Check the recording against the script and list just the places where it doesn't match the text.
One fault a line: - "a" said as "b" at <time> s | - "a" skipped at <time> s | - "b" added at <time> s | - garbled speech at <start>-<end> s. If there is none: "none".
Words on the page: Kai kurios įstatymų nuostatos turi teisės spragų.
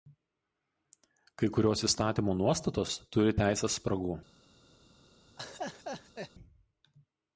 none